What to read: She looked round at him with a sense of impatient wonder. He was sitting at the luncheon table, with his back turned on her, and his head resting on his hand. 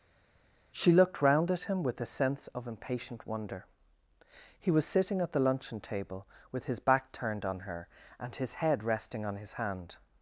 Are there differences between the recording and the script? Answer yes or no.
no